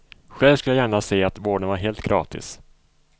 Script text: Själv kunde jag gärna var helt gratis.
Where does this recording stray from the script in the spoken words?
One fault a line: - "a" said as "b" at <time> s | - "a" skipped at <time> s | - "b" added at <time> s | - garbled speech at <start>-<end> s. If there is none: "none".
- "kunde" said as "skulle" at 0.6 s
- "se att vården" added at 1.0 s